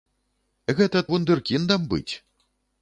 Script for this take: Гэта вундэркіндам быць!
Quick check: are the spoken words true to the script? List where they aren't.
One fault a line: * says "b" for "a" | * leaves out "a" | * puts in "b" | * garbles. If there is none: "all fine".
all fine